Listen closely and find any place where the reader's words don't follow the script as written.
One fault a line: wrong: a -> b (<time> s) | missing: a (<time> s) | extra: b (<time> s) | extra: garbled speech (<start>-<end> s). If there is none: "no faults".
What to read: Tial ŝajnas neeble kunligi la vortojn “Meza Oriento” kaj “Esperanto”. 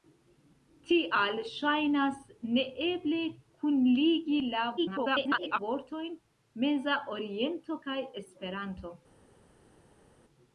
extra: garbled speech (4.8-5.6 s)